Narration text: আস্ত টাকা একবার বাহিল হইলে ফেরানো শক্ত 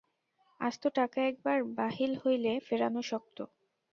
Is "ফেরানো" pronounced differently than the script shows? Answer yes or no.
no